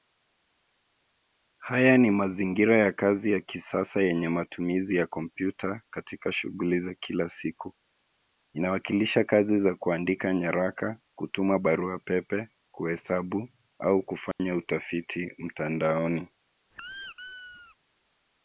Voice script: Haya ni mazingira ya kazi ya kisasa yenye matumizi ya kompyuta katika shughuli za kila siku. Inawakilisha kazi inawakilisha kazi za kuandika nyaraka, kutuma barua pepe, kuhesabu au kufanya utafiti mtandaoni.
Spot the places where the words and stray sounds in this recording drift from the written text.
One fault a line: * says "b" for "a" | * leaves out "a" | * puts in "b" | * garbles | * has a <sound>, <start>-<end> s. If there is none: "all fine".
* leaves out "inawakilisha kazi"
* has a dropout, 14.3-14.4 s
* has a squeak, 16.7-17.8 s